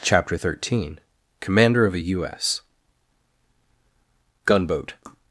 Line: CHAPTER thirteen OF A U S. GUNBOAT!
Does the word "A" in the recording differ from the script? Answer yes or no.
no